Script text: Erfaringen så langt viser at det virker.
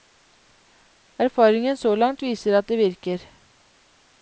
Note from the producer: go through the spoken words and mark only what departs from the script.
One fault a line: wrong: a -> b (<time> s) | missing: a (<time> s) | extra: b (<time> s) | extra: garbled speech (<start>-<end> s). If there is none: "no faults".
no faults